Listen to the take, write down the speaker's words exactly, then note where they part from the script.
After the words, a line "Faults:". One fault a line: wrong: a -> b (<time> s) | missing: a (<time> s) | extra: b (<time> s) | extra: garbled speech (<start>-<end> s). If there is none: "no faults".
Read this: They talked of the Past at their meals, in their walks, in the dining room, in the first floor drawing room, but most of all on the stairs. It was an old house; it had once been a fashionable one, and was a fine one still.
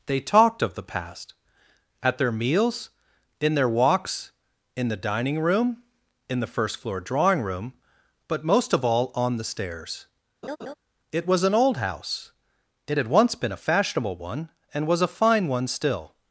They talked of the Past at their meals, in their walks, in the dining room, in the first floor drawing room, but most of all on the stairs. It was an old house; it had once been a fashionable one, and was a fine one still.
Faults:
no faults